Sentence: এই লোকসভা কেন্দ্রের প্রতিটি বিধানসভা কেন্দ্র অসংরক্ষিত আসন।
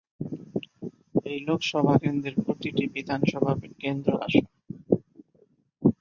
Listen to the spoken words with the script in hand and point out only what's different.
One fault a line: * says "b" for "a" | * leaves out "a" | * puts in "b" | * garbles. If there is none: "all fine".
* leaves out "অসংরক্ষিত"